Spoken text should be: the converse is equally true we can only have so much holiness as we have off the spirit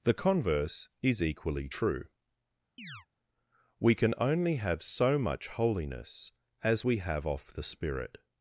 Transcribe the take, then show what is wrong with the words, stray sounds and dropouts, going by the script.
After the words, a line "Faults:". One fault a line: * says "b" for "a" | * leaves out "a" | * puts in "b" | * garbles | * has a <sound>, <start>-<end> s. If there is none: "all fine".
the converse is equally true we can only have so much holiness as we have off the spirit
Faults:
* has a chirp, 2.8-3.1 s